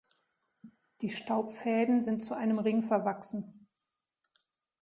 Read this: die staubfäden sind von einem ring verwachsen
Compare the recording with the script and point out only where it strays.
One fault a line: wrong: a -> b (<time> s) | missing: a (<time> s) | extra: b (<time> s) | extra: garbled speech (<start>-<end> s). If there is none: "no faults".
wrong: von -> zu (2.2 s)